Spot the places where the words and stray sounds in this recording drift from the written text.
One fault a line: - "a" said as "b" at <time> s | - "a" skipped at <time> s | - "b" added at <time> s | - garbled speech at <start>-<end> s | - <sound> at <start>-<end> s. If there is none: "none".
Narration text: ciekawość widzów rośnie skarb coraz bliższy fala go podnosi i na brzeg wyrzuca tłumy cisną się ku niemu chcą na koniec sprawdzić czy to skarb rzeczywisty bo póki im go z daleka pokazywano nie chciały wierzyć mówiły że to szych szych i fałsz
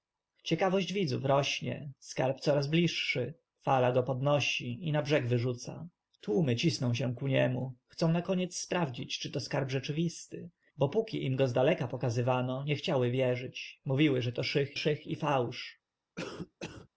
- cough at 16.2-16.9 s